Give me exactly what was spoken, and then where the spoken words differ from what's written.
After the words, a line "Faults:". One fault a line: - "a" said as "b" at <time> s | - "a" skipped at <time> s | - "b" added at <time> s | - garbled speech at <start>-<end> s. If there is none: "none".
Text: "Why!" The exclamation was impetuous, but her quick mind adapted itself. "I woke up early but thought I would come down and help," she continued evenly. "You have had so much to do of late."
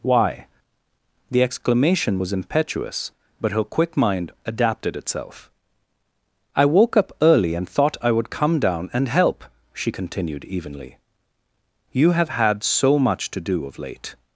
"Why!" The exclamation was impetuous, but her quick mind adapted itself. "I woke up early and thought I would come down and help," she continued evenly. "You have had so much to do of late."
Faults:
- "but" said as "and" at 7.5 s